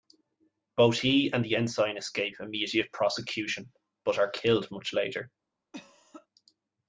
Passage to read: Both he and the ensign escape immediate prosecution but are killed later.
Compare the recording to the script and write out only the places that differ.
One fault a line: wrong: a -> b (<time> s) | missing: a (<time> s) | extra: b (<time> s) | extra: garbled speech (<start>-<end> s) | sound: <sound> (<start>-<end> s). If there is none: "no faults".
extra: much (4.7 s)
sound: cough (5.7-6.3 s)